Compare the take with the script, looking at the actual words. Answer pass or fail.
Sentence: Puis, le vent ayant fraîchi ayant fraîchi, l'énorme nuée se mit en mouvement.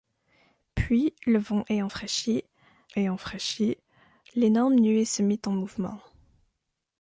pass